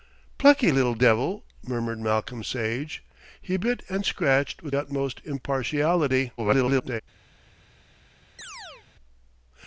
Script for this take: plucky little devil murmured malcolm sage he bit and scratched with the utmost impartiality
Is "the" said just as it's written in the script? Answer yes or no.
no